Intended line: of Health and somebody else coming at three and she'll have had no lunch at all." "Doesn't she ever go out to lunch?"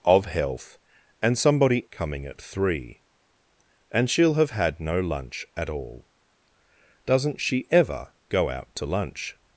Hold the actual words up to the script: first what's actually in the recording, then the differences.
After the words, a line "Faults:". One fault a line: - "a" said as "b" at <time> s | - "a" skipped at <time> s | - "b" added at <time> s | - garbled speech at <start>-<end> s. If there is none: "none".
of Health and somebody coming at three and she'll have had no lunch at all." "Doesn't she ever go out to lunch?"
Faults:
- "else" skipped at 1.9 s